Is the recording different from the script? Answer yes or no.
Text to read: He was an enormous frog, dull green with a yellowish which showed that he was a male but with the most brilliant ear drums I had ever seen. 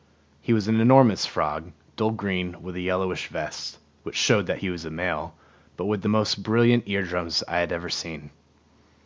yes